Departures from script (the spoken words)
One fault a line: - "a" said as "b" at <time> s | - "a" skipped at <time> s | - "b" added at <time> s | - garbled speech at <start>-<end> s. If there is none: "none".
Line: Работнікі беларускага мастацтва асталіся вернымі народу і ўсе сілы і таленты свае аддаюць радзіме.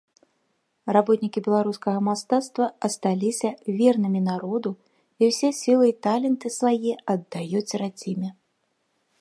none